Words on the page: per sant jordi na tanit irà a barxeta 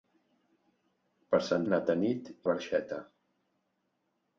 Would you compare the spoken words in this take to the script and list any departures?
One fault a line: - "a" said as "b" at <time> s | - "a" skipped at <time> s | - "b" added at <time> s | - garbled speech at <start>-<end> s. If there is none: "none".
- "jordi" skipped at 1.7 s
- "irà" skipped at 2.3 s